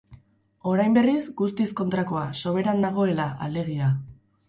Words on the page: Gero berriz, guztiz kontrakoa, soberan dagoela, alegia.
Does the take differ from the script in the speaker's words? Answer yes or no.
yes